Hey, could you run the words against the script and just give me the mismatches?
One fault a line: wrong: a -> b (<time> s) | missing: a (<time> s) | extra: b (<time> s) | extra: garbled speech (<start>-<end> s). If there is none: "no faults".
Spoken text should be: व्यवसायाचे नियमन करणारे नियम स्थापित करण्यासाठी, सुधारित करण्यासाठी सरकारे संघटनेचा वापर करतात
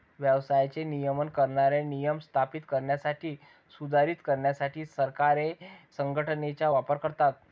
no faults